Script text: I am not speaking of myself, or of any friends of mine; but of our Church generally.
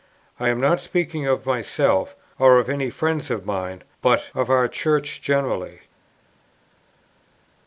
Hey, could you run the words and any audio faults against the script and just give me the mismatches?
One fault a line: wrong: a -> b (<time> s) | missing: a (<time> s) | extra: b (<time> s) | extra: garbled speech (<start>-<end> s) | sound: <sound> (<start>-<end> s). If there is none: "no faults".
no faults